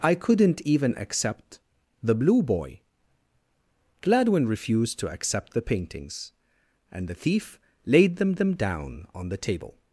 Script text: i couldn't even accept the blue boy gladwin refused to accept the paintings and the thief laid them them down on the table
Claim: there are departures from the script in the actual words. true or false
false